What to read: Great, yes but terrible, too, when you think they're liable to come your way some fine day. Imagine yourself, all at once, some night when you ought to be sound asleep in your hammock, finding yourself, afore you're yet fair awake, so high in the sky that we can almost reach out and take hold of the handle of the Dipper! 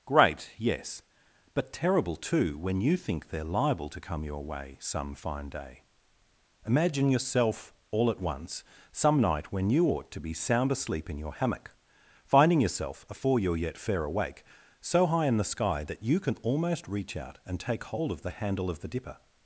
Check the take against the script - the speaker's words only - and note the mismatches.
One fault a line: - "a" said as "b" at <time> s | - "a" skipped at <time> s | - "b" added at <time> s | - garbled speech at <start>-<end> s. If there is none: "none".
- "we" said as "you" at 16.0 s